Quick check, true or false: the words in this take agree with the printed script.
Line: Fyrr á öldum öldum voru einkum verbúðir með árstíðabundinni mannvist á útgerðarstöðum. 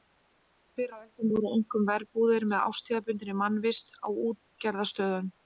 false